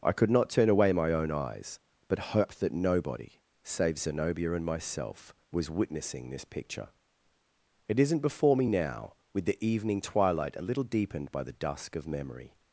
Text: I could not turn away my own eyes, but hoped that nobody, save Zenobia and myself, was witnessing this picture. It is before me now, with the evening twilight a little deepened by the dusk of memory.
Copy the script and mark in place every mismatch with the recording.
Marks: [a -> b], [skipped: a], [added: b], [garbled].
I could not turn away my own eyes, but hoped that nobody, save Zenobia and myself, was witnessing this picture. It [is -> isn't] before me now, with the evening twilight a little deepened by the dusk of memory.